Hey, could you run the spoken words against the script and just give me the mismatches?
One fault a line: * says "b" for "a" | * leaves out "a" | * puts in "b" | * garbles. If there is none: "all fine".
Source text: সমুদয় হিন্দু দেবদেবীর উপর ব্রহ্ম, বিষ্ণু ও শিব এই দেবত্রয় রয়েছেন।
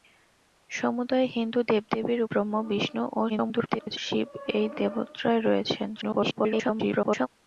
* leaves out "উপর"
* garbles
* garbles